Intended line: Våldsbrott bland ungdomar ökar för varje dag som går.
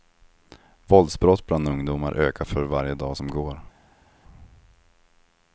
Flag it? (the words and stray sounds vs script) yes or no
no